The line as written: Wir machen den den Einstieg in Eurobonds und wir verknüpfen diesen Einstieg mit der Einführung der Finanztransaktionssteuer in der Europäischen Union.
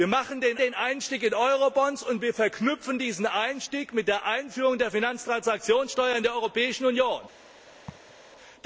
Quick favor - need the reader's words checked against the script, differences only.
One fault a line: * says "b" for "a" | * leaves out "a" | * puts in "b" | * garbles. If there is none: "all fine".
all fine